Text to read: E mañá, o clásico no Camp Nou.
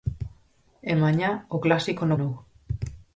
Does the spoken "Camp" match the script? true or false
false